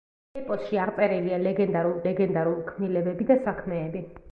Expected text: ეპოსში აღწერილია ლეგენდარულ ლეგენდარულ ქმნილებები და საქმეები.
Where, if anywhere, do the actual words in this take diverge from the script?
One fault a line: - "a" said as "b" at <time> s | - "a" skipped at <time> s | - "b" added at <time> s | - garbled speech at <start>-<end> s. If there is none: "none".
none